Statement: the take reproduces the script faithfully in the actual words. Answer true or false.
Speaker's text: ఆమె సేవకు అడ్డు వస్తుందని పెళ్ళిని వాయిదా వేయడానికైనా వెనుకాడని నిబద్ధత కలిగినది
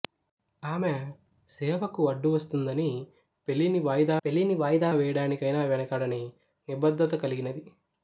false